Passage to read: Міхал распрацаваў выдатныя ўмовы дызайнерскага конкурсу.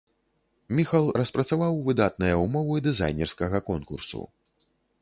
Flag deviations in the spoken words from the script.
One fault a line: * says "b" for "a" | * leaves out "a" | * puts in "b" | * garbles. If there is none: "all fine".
all fine